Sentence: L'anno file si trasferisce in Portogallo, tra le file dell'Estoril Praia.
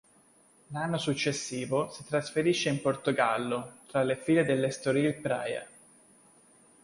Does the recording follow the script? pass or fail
fail